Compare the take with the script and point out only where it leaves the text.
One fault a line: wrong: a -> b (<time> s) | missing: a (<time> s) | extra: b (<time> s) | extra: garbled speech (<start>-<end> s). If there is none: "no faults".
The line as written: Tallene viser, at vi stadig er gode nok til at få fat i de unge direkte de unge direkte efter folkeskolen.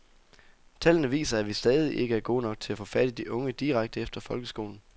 extra: ikke (2.0 s)
missing: de unge direkte (4.0 s)